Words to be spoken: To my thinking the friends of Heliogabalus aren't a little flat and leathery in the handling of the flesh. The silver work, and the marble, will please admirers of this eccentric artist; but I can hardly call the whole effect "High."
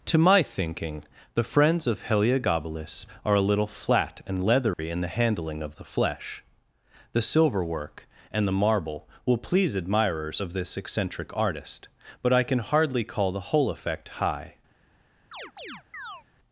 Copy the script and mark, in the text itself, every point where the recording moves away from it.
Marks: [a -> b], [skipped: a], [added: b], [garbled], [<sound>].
To my thinking the friends of Heliogabalus [aren't -> are] a little flat and leathery [dropout] in the handling of the flesh. The silver work, and the marble, will please admirers of this eccentric artist; but I can hardly call the whole effect "High." [chirp]